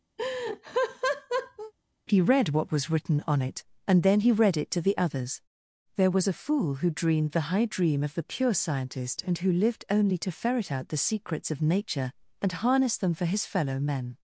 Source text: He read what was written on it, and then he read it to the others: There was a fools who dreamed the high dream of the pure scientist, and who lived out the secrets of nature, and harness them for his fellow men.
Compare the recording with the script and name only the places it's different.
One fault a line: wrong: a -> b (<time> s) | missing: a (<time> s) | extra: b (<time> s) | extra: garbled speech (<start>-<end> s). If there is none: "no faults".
wrong: fools -> fool (6.3 s)
extra: only to ferret (9.9 s)